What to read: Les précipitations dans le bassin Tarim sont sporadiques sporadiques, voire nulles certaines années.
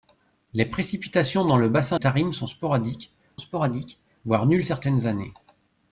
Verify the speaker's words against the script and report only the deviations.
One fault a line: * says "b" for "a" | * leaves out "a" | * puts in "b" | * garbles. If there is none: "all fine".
all fine